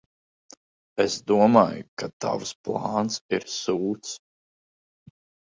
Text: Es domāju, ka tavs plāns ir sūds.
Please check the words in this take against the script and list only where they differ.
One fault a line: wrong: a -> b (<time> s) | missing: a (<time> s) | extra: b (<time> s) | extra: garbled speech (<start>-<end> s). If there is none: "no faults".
no faults